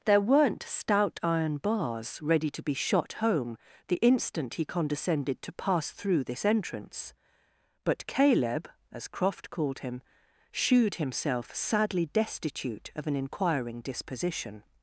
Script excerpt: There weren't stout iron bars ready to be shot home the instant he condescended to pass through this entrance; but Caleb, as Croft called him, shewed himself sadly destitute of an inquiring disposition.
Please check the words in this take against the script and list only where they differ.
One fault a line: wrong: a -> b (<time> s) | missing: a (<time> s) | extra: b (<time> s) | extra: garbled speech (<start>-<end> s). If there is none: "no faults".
no faults